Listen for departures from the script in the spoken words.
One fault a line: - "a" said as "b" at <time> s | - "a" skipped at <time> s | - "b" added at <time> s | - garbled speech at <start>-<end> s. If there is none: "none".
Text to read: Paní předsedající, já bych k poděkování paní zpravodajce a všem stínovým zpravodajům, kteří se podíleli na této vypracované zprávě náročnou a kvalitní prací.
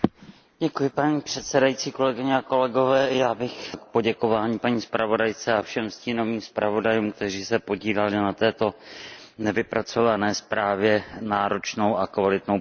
none